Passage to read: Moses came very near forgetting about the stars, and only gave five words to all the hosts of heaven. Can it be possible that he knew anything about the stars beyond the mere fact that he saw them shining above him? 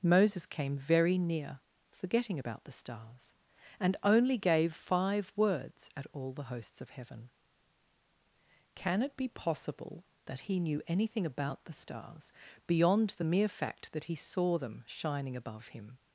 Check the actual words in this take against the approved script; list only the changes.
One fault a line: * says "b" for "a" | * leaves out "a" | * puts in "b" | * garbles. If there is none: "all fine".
* says "at" for "to"